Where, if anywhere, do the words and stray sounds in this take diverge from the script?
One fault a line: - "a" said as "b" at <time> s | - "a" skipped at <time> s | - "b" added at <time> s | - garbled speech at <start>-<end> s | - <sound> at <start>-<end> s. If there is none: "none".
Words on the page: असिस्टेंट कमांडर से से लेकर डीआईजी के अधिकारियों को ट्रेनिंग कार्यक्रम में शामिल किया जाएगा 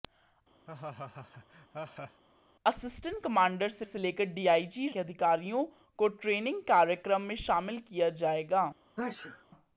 - laugh at 0.7-2.2 s
- sneeze at 9.0-9.4 s